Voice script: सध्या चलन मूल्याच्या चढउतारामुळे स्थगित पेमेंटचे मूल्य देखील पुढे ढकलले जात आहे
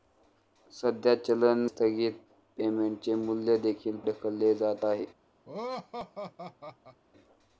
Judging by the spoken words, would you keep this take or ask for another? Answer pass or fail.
fail